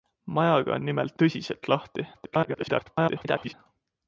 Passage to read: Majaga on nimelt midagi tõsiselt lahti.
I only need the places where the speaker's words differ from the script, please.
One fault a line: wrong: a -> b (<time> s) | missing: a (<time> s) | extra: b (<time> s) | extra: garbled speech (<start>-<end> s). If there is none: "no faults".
missing: midagi (1.2 s)
extra: garbled speech (2.1-3.5 s)